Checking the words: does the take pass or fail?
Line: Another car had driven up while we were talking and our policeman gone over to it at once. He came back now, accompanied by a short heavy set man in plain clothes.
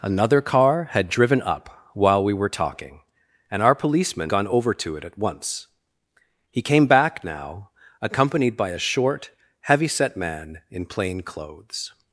pass